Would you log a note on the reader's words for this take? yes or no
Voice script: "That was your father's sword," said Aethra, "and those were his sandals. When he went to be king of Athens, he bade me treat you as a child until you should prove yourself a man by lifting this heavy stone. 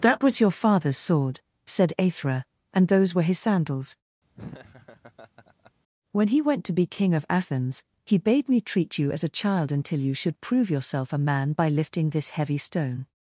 no